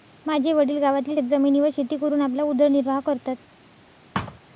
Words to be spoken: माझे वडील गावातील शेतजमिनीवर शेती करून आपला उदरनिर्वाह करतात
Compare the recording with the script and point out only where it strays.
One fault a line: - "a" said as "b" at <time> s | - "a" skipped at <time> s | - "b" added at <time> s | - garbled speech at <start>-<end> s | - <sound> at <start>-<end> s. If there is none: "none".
- thud at 4.1-4.4 s